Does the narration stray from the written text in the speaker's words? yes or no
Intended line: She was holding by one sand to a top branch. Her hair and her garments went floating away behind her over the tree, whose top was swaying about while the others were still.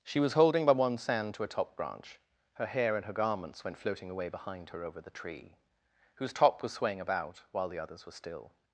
no